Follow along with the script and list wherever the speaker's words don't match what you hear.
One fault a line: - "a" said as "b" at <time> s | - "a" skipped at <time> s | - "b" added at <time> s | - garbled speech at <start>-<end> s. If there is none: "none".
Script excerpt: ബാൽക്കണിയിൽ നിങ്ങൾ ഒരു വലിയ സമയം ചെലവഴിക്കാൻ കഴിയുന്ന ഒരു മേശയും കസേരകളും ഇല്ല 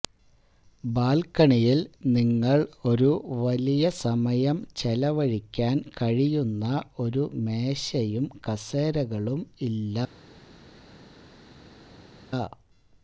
none